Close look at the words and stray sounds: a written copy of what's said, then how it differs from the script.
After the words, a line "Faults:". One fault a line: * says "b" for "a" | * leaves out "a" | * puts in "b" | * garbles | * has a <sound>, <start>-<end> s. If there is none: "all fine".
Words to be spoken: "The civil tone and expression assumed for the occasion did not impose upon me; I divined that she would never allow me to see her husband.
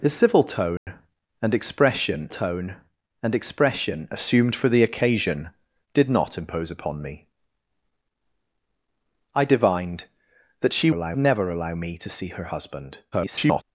"The civil tone and expression tone and expression assumed for the occasion did not impose upon me; I divined that she allow never allow me to see her husband. [garbled]
Faults:
* has a dropout, 0.8-0.9 s
* puts in "tone and expression"
* says "allow" for "would"
* garbles